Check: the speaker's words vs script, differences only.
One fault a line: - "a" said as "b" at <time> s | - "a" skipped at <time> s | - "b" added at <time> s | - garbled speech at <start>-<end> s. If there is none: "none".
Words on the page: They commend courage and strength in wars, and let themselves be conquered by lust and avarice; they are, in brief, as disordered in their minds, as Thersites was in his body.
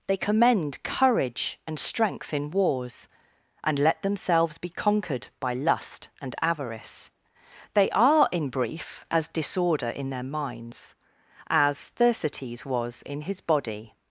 - "disordered" said as "disorder" at 9.3 s